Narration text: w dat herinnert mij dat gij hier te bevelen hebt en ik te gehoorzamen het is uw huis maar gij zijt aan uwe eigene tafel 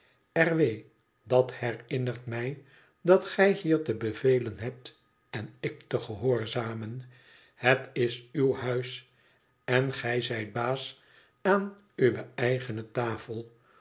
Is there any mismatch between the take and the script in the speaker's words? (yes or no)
yes